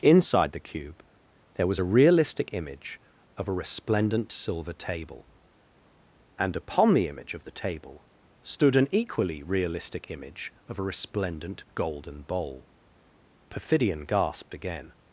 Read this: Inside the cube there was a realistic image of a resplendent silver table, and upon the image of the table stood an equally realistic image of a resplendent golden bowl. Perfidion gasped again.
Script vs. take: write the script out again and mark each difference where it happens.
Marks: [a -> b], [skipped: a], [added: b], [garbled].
Inside the cube there was a realistic image of a resplendent silver table, and upon the image of the table stood an equally realistic image of a resplendent golden bowl. Perfidion gasped again.